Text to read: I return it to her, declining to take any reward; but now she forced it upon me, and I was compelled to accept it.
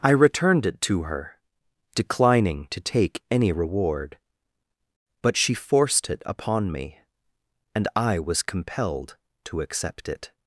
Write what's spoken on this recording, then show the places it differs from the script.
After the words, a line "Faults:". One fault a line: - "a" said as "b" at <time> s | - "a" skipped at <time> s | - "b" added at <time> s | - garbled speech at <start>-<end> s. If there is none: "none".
I returned it to her, declining to take any reward; but she forced it upon me, and I was compelled to accept it.
Faults:
- "return" said as "returned" at 0.1 s
- "now" skipped at 5.4 s